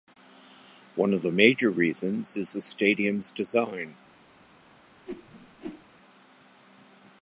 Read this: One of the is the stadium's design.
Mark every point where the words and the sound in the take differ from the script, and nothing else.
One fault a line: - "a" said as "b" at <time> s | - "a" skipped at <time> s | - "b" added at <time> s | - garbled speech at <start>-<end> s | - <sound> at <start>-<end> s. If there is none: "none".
- "major reasons" added at 1.3 s
- whoosh at 5.1-5.8 s